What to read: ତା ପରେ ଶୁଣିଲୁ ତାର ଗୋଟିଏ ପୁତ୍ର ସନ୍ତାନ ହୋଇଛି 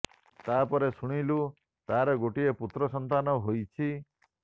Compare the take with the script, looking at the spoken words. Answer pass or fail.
pass